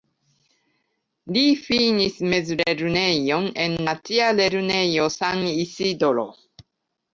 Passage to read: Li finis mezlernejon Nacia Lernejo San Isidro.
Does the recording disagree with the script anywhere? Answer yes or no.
yes